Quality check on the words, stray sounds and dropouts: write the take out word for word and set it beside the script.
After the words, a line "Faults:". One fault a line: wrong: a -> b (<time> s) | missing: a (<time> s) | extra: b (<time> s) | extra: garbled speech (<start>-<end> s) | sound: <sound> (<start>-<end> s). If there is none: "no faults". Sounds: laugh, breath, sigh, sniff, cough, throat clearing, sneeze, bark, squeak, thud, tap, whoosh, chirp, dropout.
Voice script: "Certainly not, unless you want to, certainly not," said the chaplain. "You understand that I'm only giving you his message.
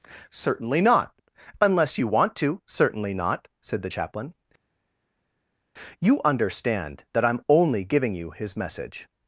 "Certainly not, unless you want to, certainly not," said the chaplain. "You understand that I'm only giving you his message.
Faults:
no faults